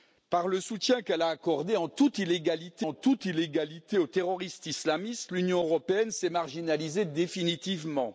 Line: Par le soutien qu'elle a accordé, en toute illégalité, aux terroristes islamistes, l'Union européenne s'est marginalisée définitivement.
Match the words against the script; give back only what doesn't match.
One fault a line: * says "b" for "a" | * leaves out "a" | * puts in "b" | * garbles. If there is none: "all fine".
* puts in "en toute illégalité"